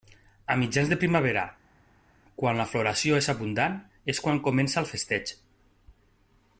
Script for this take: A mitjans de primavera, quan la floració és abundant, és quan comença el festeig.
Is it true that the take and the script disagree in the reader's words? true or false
false